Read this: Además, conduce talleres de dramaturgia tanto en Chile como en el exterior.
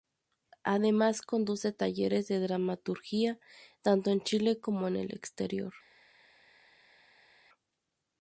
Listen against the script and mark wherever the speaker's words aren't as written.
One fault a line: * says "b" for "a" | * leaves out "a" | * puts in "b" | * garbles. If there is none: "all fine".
all fine